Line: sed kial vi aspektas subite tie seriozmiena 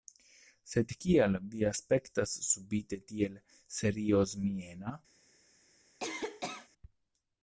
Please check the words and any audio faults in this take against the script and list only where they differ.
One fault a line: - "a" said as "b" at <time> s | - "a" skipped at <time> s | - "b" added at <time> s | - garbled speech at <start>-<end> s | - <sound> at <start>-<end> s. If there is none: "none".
- "tie" said as "tiel" at 3.1 s
- cough at 6.0-6.7 s